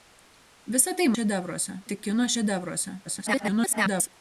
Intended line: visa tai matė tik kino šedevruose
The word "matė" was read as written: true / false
false